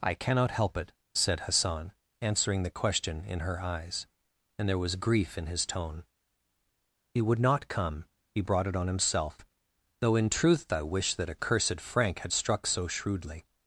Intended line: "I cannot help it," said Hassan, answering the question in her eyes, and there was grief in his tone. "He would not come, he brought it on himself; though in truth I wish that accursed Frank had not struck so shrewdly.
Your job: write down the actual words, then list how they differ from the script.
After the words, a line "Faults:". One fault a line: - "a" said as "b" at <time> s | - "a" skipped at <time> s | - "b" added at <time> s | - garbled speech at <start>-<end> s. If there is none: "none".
"I cannot help it," said Hassan, answering the question in her eyes, and there was grief in his tone. "He would not come, he brought it on himself; though in truth I wish that accursed Frank had struck so shrewdly.
Faults:
- "not" skipped at 12.3 s